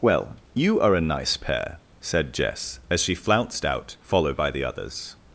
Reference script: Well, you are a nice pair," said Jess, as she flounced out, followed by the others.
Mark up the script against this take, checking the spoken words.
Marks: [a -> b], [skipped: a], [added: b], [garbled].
Well, you are a nice pair," said Jess, as she flounced out, followed by the others.